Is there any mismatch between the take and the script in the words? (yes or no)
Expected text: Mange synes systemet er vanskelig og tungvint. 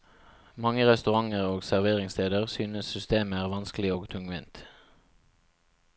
yes